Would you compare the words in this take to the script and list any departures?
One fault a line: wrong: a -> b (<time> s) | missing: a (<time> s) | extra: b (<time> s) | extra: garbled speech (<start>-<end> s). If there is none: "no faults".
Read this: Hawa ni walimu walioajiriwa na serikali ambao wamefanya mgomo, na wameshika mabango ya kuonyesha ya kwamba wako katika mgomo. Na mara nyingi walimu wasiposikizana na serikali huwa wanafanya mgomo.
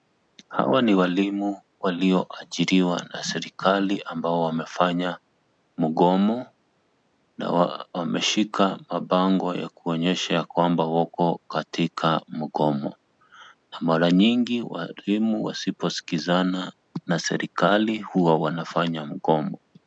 no faults